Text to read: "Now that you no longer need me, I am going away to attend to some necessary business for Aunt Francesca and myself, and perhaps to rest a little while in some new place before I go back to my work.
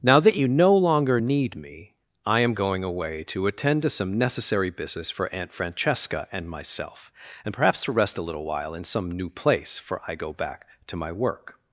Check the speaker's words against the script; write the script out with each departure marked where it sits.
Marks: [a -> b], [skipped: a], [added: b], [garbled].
"Now that you no longer need me, I am going away to attend to some necessary business for Aunt Francesca and myself, and perhaps to rest a little while in some new place [before -> for] I go back to my work.